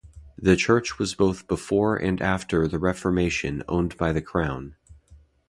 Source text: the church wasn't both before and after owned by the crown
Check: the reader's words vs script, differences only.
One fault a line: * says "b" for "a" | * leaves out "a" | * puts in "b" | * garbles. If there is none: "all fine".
* says "was" for "wasn't"
* puts in "the reformation"